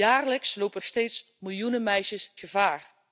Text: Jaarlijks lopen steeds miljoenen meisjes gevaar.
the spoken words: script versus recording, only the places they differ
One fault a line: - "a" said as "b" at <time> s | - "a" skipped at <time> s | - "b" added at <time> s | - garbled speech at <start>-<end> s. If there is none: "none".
none